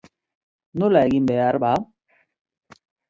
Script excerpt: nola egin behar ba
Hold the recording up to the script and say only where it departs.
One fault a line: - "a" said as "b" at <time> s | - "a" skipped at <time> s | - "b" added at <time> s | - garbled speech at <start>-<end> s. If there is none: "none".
none